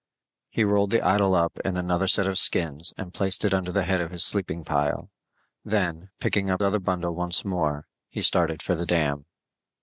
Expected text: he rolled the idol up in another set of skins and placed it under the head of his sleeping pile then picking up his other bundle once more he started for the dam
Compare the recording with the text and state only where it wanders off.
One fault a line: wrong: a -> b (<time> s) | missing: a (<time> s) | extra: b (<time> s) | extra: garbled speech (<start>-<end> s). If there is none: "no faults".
missing: his (6.6 s)